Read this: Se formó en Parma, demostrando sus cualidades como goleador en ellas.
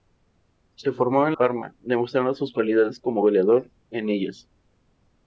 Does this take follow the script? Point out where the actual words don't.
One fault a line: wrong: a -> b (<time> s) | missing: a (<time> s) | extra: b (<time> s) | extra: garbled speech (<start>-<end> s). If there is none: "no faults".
no faults